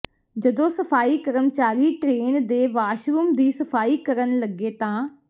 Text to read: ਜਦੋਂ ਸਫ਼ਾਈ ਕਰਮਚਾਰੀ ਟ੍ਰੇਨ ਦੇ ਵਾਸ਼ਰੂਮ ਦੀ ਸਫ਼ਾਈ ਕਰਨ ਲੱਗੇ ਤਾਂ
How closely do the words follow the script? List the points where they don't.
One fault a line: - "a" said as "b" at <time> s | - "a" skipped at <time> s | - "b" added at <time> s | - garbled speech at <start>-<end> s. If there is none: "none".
none